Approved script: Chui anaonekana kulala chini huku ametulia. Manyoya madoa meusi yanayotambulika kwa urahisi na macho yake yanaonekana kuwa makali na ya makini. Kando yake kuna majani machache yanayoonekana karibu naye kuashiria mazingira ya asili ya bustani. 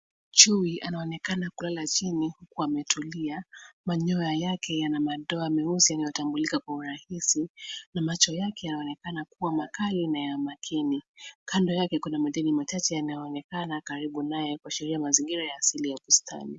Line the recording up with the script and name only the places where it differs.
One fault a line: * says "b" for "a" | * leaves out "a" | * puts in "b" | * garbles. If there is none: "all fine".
* puts in "yake yana"